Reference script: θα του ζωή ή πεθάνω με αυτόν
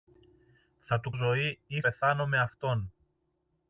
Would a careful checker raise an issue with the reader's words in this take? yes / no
no